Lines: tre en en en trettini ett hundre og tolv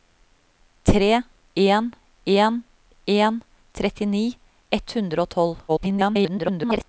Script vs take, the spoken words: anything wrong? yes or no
yes